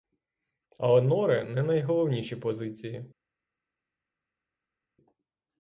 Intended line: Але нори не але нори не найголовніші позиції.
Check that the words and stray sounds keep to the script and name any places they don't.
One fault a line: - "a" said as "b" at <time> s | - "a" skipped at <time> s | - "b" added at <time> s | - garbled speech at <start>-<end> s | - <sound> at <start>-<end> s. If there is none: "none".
- "але нори не" skipped at 1.6 s